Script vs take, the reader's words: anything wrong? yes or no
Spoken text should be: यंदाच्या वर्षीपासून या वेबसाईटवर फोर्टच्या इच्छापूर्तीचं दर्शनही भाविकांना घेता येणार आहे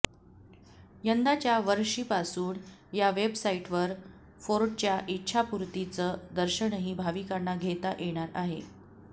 no